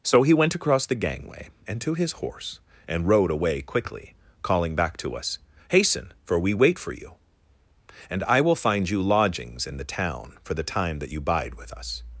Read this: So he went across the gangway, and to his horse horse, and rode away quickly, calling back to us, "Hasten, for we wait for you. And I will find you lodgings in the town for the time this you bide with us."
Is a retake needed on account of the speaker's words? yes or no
yes